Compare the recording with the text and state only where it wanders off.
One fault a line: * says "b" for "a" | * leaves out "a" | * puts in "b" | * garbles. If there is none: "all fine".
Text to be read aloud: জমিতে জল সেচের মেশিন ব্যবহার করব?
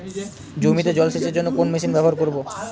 * puts in "জন্য কোন"